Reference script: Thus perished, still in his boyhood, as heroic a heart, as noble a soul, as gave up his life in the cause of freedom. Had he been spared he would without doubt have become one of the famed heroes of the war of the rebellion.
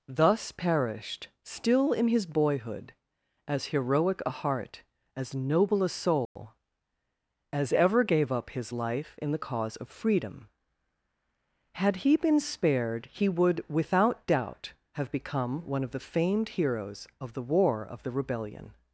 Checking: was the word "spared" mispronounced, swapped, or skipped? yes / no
no